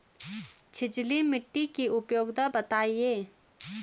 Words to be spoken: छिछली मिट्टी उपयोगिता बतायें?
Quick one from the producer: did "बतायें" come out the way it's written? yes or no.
yes